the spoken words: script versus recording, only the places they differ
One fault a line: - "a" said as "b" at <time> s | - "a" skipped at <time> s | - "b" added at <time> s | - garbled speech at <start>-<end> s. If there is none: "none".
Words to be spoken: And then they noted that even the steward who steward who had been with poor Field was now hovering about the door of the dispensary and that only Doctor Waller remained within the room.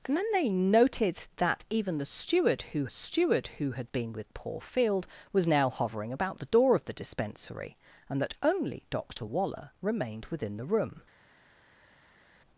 none